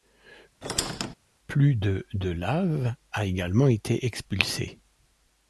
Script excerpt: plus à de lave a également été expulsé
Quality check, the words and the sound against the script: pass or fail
fail